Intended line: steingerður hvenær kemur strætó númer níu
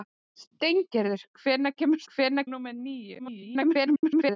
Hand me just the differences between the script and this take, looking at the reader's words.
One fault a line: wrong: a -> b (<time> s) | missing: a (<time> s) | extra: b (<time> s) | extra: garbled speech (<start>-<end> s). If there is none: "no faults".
wrong: strætó -> hvenær (2.1 s)
extra: garbled speech (3.2-4.4 s)